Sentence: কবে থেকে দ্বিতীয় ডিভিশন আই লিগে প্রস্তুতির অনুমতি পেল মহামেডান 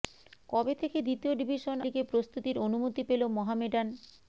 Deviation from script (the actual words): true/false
true